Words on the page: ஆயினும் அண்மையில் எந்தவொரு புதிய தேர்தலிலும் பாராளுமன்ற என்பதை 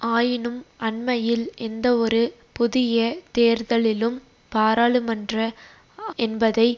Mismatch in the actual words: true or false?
false